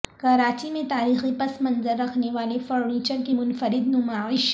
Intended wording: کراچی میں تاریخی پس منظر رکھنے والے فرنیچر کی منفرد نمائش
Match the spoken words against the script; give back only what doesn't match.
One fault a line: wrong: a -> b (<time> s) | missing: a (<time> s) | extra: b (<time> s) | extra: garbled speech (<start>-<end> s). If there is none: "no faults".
no faults